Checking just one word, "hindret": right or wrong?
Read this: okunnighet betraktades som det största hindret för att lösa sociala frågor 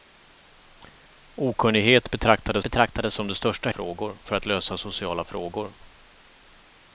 wrong